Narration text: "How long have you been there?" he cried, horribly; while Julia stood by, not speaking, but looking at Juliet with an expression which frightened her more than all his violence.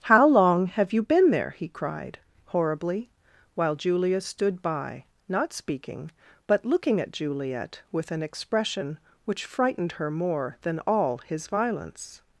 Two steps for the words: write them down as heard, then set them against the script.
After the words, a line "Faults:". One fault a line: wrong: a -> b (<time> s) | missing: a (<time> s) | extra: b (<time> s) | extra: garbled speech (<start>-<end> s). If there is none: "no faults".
"How long have you been there?" he cried, horribly; while Julia stood by, not speaking, but looking at Juliet with an expression which frightened her more than all his violence.
Faults:
no faults